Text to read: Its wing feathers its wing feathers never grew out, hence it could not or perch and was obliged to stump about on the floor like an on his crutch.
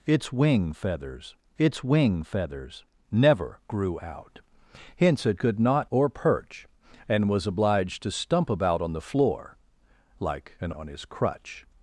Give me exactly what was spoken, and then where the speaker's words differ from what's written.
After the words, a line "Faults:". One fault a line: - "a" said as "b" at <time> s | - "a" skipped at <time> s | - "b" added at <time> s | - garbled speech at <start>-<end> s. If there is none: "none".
Its wing feathers its wing feathers never grew out, hence it could not or perch and was obliged to stump about on the floor like an on his crutch.
Faults:
none